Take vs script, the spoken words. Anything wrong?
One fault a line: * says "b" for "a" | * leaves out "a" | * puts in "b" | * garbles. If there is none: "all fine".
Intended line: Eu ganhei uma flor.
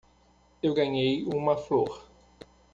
all fine